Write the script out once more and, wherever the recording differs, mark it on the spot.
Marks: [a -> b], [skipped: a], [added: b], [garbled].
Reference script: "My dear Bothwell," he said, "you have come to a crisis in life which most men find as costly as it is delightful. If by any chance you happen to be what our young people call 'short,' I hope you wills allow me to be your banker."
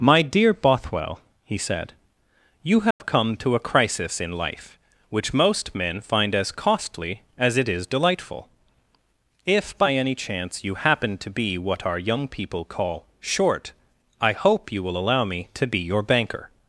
"My dear Bothwell," he said, "you have come to a crisis in life which most men find as costly as it is delightful. If by any chance you happen to be what our young people call 'short,' I hope you [wills -> will] allow me to be your banker."